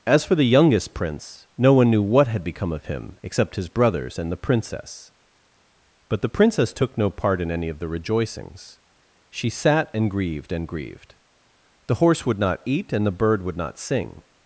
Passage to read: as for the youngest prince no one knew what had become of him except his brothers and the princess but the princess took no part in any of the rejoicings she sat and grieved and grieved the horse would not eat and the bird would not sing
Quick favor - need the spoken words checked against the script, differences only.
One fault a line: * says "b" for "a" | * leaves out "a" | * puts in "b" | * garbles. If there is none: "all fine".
all fine